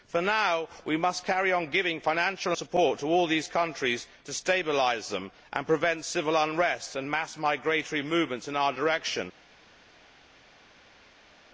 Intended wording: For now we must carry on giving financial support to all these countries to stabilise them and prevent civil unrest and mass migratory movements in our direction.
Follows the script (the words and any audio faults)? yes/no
yes